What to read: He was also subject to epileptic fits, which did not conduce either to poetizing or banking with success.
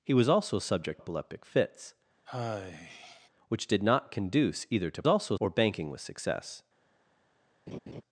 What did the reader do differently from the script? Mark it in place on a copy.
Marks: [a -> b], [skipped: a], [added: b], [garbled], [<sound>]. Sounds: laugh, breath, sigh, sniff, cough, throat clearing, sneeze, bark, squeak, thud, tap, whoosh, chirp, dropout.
He was also subject [skipped: to] epileptic fits, [sigh] which did not conduce either to [poetizing -> also] or banking with success. [laugh]